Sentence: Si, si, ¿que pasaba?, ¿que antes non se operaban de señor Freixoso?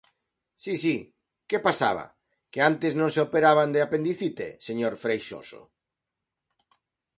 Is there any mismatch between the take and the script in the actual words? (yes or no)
yes